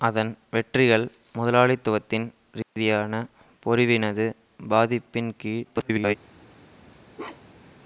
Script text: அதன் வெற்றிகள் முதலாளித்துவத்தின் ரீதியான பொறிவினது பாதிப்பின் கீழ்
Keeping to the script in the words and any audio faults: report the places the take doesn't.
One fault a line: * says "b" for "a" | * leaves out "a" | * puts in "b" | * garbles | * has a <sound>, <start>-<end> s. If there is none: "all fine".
* has a dropout, 2.6-2.8 s
* garbles
* has a bark, 7.1-7.7 s